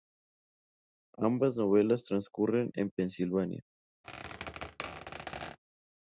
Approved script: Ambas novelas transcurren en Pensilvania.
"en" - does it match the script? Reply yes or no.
yes